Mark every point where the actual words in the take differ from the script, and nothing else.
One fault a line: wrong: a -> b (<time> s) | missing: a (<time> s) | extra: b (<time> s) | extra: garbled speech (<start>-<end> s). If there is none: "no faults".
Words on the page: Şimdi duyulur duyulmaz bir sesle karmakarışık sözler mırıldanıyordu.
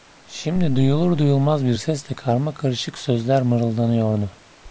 no faults